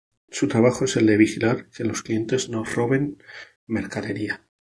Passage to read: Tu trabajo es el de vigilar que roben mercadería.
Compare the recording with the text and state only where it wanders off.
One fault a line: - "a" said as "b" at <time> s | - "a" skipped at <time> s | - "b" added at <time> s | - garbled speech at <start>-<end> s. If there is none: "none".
- "Tu" said as "Su" at 0.3 s
- "los clientes no" added at 1.8 s